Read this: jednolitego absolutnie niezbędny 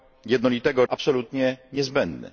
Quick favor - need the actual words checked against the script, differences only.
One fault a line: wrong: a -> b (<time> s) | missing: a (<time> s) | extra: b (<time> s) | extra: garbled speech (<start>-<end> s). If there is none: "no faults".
no faults